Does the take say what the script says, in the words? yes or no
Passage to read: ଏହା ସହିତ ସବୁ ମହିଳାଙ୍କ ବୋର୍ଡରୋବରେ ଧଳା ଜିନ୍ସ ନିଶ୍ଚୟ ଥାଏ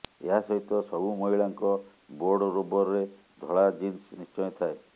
yes